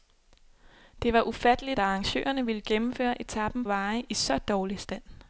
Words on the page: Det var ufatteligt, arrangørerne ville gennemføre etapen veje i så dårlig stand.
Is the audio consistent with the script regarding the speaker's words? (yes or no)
yes